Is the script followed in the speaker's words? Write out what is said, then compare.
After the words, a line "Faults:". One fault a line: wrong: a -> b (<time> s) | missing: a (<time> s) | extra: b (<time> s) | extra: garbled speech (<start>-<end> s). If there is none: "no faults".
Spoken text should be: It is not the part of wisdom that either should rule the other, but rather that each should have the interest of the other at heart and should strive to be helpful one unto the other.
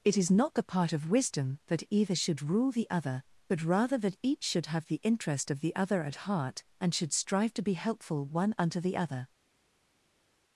It is not the part of wisdom that either should rule the other, but rather that each should have the interest of the other at heart and should strive to be helpful one unto the other.
Faults:
no faults